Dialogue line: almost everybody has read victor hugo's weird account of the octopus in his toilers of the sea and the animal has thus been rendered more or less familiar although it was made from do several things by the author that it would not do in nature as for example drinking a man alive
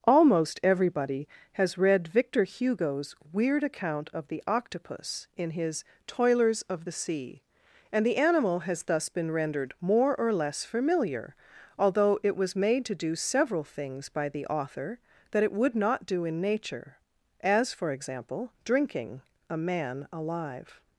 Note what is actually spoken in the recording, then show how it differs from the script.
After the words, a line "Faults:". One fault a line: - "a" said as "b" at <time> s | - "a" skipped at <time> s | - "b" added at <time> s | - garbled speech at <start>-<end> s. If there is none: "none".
almost everybody has read victor hugo's weird account of the octopus in his toilers of the sea and the animal has thus been rendered more or less familiar although it was made to do several things by the author that it would not do in nature as for example drinking a man alive
Faults:
- "from" said as "to" at 12.9 s